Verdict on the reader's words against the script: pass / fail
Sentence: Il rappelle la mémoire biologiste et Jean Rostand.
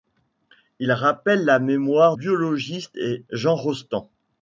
pass